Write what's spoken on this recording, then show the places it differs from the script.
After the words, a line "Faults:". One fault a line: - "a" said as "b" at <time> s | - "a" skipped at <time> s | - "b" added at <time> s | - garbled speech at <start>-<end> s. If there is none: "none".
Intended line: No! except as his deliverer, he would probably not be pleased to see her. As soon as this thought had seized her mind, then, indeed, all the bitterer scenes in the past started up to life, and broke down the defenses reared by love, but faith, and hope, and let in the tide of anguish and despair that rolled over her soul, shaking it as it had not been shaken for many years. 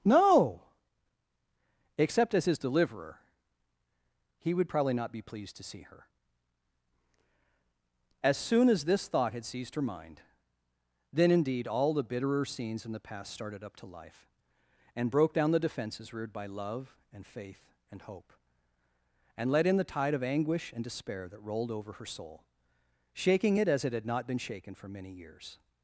No! except as his deliverer, he would probably not be pleased to see her. As soon as this thought had seized her mind, then, indeed, all the bitterer scenes in the past started up to life, and broke down the defenses reared by love, and faith, and hope, and let in the tide of anguish and despair that rolled over her soul, shaking it as it had not been shaken for many years.
Faults:
- "but" said as "and" at 17.1 s